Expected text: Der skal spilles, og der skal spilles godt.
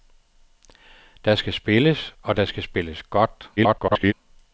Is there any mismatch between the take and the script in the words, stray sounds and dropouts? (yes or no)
yes